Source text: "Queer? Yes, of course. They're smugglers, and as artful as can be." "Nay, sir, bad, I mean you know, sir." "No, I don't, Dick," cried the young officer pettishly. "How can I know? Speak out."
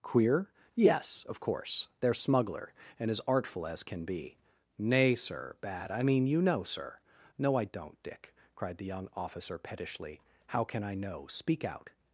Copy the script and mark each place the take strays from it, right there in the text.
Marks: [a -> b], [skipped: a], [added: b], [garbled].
"Queer? Yes, of course. They're [smugglers, -> smuggler] and as artful as can be." "Nay, sir, bad, I mean you know, sir." "No, I don't, Dick," cried the young officer pettishly. "How can I know? Speak out."